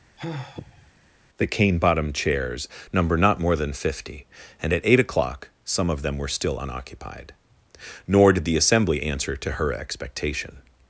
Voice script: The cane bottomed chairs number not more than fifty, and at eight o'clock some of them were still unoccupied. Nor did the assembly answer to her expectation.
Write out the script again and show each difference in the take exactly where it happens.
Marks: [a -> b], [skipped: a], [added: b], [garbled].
The cane bottomed chairs number not more than fifty, and at eight o'clock some of them were still unoccupied. Nor did the assembly answer to her expectation.